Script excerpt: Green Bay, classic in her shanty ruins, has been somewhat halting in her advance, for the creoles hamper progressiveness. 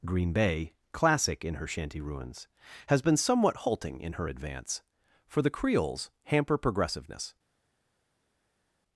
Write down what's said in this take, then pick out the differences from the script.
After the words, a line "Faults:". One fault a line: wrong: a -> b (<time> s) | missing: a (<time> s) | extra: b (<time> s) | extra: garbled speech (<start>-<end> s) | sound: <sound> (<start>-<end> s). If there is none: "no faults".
Green Bay, classic in her shanty ruins, has been somewhat halting in her advance, for the creoles hamper progressiveness.
Faults:
no faults